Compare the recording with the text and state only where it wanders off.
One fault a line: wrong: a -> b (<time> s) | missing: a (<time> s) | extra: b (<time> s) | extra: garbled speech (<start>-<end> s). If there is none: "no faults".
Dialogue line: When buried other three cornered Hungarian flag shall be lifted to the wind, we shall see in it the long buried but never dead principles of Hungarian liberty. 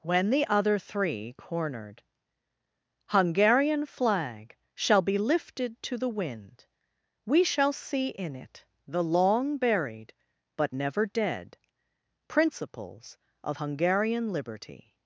wrong: buried -> the (0.3 s)